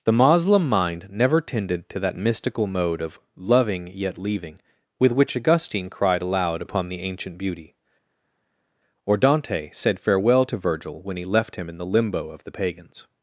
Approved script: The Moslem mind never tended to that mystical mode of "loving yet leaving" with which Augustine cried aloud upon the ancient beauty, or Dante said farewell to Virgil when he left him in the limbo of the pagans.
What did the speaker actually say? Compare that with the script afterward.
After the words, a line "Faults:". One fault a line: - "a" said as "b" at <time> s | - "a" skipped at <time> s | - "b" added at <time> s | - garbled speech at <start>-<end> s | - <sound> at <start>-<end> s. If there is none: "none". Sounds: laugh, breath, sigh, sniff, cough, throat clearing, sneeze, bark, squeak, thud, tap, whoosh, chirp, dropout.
The Moslem mind never tended to that mystical mode of "loving yet leaving" with which Augustine cried aloud upon the ancient beauty, or Dante said farewell to Virgil when he left him in the limbo of the pagans.
Faults:
none